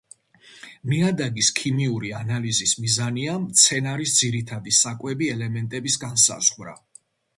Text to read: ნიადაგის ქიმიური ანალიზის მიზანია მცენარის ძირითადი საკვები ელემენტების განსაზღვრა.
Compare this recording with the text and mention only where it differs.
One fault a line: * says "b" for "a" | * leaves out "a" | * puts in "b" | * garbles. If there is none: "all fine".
all fine